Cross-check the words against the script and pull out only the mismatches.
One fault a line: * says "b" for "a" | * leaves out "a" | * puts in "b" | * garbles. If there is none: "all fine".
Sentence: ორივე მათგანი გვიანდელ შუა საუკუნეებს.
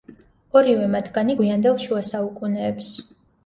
all fine